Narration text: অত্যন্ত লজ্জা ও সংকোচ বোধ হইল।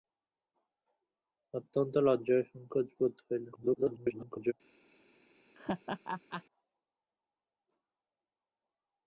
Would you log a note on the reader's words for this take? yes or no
yes